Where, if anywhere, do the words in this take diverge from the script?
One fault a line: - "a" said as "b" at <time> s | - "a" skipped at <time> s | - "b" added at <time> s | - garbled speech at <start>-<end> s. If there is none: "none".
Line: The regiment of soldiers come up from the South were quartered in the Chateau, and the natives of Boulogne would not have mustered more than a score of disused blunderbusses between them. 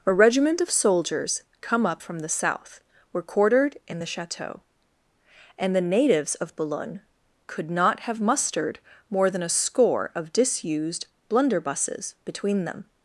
- "The" said as "A" at 0.0 s
- "would" said as "could" at 7.5 s